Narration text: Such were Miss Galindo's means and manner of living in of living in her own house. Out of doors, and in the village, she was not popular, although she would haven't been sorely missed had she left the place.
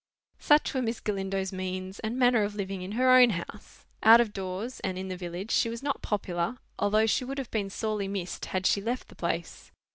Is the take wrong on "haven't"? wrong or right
wrong